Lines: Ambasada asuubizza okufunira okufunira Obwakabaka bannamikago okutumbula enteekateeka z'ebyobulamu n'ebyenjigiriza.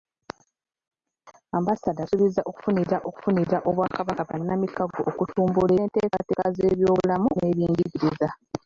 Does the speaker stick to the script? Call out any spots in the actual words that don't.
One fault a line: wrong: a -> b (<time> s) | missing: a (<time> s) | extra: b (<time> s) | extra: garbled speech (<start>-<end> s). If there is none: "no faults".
no faults